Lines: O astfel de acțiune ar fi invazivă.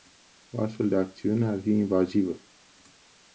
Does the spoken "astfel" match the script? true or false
true